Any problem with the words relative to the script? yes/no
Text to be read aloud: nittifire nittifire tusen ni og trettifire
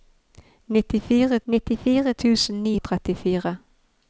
no